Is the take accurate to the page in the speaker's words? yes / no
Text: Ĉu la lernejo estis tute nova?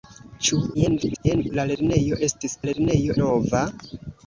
no